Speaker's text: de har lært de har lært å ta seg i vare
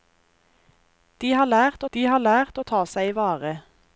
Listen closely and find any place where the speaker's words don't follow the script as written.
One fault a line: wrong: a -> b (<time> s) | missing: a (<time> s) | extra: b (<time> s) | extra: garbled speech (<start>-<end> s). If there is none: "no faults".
no faults